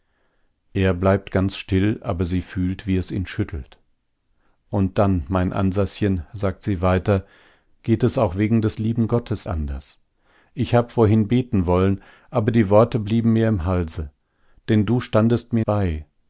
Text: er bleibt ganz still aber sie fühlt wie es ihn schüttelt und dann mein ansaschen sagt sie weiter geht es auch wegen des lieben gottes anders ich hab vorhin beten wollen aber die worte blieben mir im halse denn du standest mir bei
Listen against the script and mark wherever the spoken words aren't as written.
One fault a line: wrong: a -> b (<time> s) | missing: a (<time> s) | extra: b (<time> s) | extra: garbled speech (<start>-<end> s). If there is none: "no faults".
no faults